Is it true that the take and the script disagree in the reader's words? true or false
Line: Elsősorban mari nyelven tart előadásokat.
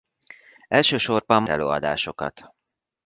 true